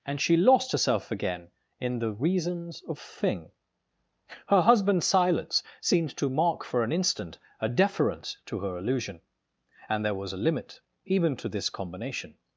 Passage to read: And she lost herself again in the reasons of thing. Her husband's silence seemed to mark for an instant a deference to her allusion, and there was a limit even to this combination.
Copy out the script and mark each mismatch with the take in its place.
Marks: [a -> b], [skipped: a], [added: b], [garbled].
And she lost herself again in the reasons of thing. Her husband's silence seemed to mark for an instant a deference to her allusion, and there was a limit even to this combination.